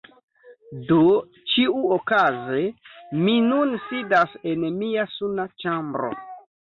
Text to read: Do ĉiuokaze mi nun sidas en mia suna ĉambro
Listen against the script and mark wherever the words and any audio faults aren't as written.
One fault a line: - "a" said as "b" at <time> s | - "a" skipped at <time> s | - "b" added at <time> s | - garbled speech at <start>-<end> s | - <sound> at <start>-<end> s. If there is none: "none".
none